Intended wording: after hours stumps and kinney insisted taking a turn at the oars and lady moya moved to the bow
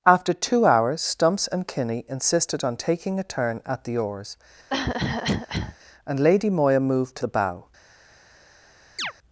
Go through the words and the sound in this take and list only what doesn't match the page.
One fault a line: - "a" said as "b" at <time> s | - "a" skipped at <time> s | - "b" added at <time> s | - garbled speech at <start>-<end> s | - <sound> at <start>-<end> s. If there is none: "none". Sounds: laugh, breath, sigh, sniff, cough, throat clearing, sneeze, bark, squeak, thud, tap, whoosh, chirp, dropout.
- "two" added at 0.3 s
- "on" added at 2.6 s
- cough at 4.7-5.8 s
- chirp at 9.0-9.1 s